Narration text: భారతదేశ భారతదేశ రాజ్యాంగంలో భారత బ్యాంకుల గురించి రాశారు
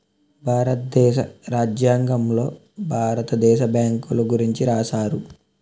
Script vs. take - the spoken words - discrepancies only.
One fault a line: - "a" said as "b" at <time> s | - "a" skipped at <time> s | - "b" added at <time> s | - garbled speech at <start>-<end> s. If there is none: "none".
- "భారతదేశ" skipped at 1.2 s
- "దేశ" added at 3.5 s